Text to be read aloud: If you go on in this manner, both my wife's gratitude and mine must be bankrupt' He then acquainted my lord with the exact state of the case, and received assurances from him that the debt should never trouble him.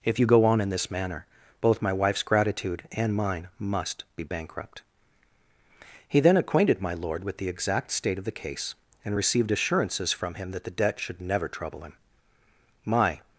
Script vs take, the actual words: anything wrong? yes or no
yes